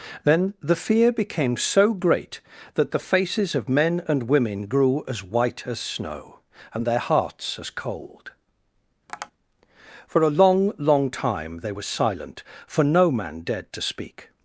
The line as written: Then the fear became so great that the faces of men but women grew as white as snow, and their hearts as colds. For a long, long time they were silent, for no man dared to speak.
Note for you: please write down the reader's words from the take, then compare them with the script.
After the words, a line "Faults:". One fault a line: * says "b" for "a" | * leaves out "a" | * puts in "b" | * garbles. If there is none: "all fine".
Then the fear became so great that the faces of men and women grew as white as snow, and their hearts as cold. For a long, long time they were silent, for no man dared to speak.
Faults:
* says "and" for "but"
* says "cold" for "colds"